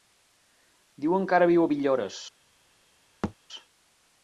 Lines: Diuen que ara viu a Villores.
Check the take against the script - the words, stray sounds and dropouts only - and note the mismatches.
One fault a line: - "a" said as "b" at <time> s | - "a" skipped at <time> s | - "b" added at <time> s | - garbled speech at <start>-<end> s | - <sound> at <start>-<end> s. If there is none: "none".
- thud at 3.2-3.3 s